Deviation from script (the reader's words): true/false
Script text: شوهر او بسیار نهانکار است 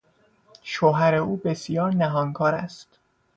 false